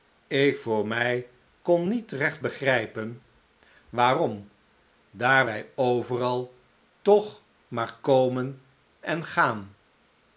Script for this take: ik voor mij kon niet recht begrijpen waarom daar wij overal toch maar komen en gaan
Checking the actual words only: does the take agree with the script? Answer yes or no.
yes